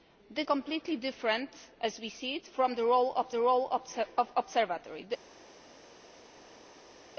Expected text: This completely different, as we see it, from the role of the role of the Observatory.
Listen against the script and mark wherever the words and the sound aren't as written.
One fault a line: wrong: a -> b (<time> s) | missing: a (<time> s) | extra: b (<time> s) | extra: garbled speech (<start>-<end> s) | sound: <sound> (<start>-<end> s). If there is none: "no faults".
no faults